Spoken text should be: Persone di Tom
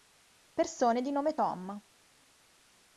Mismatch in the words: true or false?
true